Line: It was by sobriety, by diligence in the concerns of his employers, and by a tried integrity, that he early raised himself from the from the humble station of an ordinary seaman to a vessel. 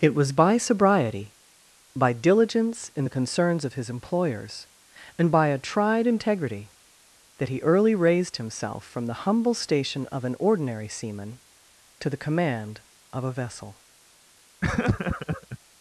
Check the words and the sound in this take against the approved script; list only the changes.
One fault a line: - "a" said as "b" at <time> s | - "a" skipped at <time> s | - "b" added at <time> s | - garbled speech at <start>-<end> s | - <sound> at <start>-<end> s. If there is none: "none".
- "from the" skipped at 9.3 s
- "the command of" added at 12.1 s
- laugh at 14.6-15.6 s